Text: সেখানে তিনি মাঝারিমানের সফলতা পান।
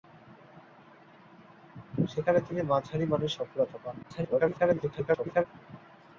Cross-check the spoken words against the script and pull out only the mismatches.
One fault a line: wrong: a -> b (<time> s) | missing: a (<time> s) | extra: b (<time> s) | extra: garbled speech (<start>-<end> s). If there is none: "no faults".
extra: garbled speech (4.0-5.4 s)